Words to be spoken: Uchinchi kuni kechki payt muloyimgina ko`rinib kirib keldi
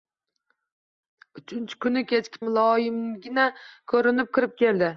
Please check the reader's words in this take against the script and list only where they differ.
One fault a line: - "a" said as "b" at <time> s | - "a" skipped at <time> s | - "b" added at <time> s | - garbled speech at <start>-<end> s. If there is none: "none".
- "payt" skipped at 2.4 s